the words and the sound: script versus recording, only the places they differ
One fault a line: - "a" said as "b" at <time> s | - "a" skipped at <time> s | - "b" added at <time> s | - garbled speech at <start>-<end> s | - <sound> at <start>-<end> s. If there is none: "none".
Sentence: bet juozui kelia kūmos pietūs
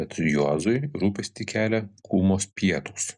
- "rūpestį" added at 1.0 s